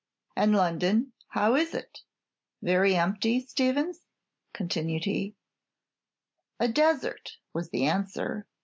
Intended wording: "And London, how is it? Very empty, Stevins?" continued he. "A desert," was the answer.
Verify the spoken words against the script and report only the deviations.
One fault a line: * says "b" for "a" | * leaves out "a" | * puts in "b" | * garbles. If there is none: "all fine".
all fine